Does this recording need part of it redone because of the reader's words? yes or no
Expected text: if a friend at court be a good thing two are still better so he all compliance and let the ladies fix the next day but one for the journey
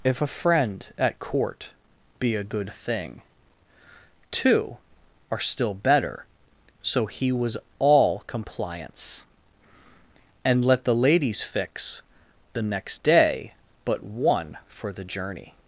yes